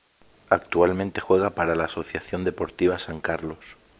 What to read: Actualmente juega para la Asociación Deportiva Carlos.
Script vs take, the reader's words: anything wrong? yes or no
yes